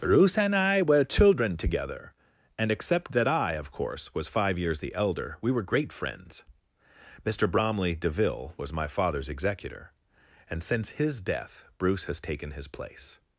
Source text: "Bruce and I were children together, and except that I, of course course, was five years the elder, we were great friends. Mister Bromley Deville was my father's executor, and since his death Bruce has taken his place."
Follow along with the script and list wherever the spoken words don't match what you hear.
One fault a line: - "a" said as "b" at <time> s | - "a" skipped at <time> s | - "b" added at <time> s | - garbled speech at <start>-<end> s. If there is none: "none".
- "course" skipped at 4.2 s